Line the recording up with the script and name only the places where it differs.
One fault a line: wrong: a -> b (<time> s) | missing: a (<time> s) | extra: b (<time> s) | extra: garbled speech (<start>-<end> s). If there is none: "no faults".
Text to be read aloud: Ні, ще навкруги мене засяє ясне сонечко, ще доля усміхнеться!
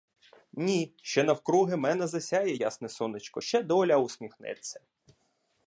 no faults